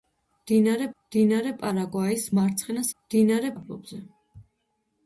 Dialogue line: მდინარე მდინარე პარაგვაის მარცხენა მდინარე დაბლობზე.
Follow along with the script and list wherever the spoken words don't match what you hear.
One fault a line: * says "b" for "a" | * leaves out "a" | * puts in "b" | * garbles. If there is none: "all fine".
all fine